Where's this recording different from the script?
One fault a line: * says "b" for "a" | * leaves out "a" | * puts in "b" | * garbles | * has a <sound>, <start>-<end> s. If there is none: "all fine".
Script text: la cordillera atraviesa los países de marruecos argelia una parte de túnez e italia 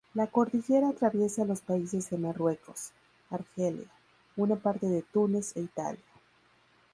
all fine